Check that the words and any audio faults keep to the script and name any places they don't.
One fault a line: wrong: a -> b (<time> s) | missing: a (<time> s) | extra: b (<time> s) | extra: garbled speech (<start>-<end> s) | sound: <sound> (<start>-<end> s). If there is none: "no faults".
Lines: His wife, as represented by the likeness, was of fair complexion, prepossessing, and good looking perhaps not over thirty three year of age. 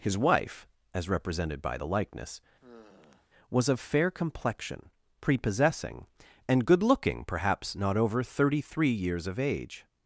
sound: sigh (2.6-3.3 s)
wrong: year -> years (8.9 s)